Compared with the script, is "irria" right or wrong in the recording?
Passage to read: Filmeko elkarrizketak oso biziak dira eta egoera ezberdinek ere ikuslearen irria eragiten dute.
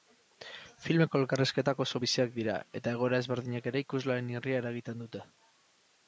right